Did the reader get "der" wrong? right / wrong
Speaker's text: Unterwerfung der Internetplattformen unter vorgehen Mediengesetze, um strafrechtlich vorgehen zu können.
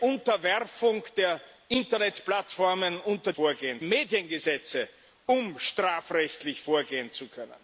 right